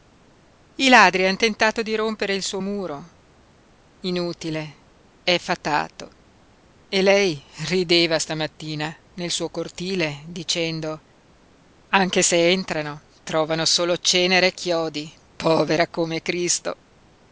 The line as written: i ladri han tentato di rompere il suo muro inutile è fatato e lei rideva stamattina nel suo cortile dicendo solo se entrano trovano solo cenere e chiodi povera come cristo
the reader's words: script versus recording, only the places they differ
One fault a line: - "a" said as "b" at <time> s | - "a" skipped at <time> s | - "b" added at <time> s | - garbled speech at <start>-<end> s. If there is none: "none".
- "solo" said as "anche" at 11.9 s